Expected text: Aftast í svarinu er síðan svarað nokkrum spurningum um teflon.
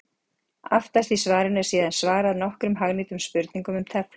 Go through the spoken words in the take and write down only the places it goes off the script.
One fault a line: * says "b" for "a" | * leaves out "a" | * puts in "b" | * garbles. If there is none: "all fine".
* puts in "hagnýtum"